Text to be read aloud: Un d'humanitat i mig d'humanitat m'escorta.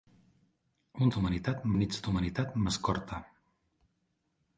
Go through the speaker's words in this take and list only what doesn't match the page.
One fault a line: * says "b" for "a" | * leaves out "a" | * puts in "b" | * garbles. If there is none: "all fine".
all fine